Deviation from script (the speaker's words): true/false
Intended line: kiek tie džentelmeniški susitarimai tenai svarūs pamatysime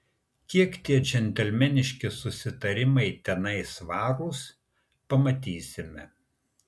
false